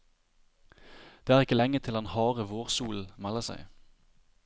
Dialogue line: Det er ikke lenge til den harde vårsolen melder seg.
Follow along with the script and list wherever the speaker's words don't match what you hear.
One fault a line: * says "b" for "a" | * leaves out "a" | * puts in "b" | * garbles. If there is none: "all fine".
all fine